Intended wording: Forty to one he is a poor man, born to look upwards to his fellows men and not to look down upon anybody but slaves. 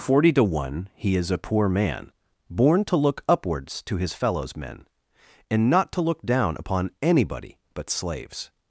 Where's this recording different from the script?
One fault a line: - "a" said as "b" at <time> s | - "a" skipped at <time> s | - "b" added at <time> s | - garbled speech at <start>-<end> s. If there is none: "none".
none